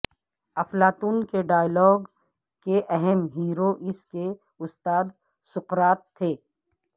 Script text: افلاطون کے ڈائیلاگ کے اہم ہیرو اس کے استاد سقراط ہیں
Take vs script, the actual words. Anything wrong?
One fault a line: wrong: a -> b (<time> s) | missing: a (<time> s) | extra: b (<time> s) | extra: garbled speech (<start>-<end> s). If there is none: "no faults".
wrong: ہیں -> تھے (6.2 s)